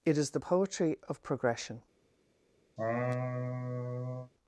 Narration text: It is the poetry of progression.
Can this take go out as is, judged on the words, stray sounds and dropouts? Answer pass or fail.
fail